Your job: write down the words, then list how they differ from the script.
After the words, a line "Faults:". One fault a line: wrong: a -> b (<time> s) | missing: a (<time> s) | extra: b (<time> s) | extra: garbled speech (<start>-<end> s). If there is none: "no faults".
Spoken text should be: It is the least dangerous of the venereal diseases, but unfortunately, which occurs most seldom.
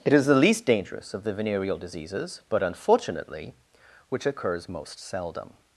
It is the least dangerous of the venereal diseases, but unfortunately, which occurs most seldom.
Faults:
no faults